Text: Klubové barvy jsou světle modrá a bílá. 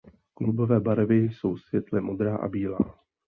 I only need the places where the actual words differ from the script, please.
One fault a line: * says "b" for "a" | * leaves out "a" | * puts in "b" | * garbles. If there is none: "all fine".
all fine